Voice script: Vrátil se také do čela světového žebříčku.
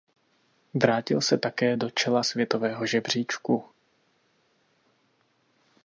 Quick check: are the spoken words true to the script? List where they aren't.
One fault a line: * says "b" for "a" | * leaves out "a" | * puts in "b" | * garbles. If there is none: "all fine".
all fine